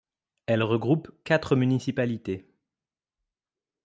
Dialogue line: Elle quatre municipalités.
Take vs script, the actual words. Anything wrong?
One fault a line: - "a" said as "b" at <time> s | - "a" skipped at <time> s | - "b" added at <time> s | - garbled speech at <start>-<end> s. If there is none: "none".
- "regroupe" added at 0.6 s